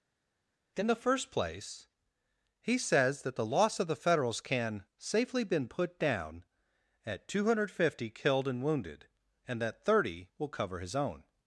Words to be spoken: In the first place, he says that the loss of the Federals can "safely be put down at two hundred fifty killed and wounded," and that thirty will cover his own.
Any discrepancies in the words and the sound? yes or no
yes